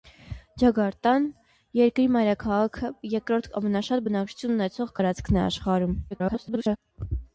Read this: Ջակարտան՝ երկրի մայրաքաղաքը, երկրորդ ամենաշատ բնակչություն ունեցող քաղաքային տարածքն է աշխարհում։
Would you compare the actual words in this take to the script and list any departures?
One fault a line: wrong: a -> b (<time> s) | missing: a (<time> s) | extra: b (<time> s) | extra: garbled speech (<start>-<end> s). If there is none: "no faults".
missing: քաղաքային (5.0 s)
extra: garbled speech (6.1-6.8 s)